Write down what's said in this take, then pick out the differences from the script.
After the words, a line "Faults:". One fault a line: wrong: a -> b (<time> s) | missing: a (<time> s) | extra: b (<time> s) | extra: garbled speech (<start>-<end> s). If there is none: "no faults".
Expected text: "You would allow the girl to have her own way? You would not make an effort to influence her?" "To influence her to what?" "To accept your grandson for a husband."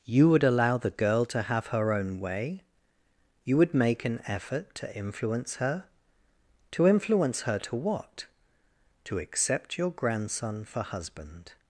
"You would allow the girl to have her own way? You would make an effort to influence her?" "To influence her to what?" "To accept your grandson for husband."
Faults:
missing: not (3.8 s)
missing: a (10.8 s)